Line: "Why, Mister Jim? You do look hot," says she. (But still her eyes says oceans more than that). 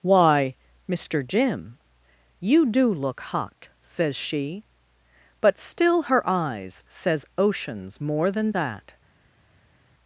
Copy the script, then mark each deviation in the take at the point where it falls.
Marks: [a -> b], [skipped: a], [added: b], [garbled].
"Why, Mister Jim? You do look hot," says she. (But still her eyes says oceans more than that).